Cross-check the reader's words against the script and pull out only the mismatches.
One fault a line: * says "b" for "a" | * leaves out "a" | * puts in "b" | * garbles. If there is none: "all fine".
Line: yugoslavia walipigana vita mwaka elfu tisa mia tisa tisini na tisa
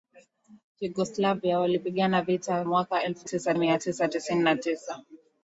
all fine